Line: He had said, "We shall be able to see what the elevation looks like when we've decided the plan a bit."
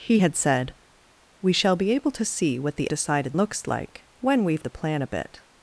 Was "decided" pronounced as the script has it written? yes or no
no